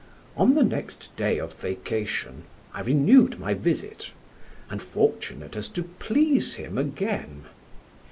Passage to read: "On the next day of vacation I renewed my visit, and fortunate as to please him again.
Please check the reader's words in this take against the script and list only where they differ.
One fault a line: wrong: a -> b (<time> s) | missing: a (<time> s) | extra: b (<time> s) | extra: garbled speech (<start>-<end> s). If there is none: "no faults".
no faults